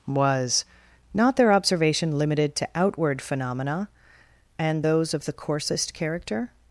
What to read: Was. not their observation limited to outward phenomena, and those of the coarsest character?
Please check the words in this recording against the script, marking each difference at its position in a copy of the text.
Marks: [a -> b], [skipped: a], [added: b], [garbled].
Was. not their observation limited to outward phenomena, and those of the coarsest character?